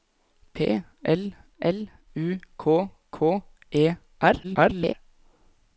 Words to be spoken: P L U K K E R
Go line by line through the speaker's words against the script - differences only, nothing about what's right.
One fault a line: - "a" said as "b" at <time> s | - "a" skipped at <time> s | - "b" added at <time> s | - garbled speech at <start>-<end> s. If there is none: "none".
- "L" added at 1.6 s
- garbled speech at 4.4-4.9 s